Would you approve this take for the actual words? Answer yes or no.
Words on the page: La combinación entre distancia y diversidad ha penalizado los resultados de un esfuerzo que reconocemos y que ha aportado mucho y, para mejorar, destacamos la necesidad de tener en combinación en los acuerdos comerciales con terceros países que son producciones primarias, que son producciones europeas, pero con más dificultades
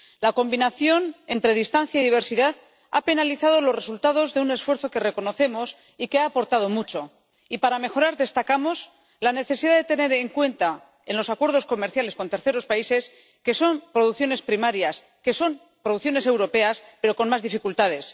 no